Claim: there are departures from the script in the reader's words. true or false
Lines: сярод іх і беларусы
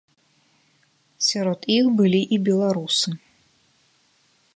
true